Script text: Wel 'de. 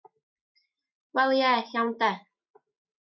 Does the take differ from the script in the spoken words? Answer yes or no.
yes